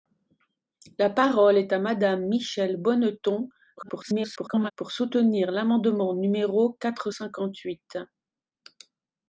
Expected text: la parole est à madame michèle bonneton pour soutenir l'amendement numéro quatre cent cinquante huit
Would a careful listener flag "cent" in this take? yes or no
yes